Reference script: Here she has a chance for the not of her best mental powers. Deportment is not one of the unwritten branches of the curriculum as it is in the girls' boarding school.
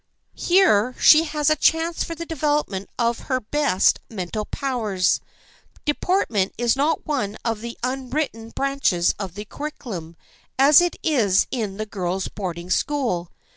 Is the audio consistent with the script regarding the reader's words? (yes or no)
no